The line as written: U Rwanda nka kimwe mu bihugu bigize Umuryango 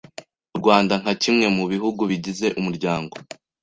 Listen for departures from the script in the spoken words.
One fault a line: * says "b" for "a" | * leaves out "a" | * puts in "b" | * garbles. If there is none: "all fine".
all fine